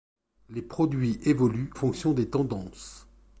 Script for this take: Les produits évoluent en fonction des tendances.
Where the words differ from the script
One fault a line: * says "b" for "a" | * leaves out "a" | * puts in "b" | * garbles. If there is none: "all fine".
* leaves out "en"